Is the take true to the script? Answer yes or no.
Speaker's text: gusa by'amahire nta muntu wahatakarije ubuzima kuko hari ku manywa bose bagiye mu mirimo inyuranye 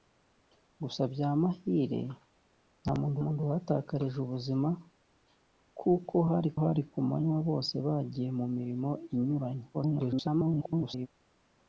no